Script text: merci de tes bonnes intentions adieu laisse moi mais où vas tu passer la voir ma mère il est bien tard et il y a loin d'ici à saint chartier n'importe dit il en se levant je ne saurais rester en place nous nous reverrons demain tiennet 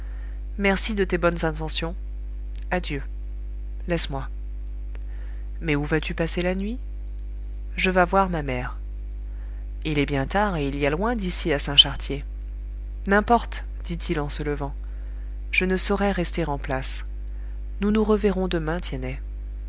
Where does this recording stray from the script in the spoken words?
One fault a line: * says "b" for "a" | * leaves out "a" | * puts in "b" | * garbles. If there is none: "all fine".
* puts in "nuit je vas"